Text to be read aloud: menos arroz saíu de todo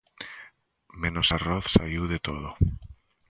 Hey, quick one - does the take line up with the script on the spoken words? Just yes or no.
yes